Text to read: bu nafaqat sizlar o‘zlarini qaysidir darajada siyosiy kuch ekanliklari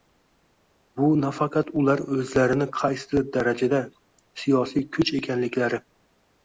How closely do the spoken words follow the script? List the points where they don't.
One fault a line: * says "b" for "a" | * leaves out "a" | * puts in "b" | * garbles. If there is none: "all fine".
* says "ular" for "sizlar"